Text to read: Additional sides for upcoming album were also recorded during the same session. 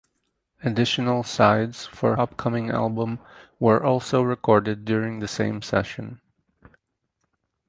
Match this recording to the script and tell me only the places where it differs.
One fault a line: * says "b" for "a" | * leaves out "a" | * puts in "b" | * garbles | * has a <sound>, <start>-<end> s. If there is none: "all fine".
all fine